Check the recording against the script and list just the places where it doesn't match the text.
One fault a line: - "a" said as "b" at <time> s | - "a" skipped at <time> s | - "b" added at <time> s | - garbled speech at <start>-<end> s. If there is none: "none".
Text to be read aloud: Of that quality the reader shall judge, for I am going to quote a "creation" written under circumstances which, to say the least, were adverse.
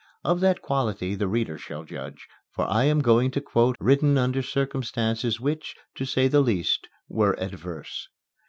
- "a creation" skipped at 3.8 s